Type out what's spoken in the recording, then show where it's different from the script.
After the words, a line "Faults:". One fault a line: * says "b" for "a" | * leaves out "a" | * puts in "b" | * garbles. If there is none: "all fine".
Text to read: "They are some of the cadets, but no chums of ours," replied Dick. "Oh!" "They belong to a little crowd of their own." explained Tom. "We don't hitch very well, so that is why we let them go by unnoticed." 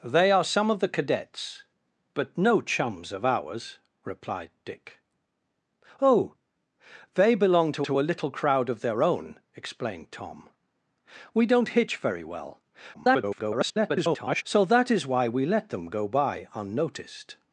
"They are some of the cadets, but no chums of ours," replied Dick. "Oh!" "They belong to to a little crowd of their own." explained Tom. "We don't hitch very well, [garbled] so that is why we let them go by unnoticed."
Faults:
* puts in "to"
* garbles